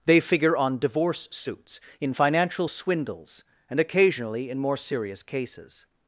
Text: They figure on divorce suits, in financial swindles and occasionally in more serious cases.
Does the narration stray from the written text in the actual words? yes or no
no